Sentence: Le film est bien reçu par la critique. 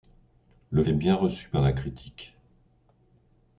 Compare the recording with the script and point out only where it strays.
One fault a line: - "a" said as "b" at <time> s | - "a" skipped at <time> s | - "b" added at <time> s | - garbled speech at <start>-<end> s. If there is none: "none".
- "film" skipped at 0.8 s